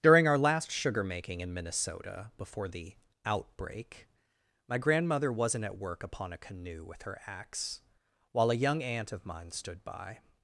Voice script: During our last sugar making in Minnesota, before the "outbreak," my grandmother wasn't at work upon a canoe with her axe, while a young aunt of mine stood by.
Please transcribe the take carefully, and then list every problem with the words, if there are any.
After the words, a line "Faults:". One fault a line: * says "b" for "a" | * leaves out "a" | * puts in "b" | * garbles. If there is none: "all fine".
During our last sugar making in Minnesota, before the "outbreak," my grandmother wasn't at work upon a canoe with her axe, while a young aunt of mine stood by.
Faults:
all fine